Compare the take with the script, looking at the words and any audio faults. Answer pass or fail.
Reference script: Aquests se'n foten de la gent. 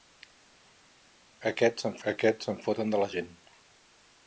fail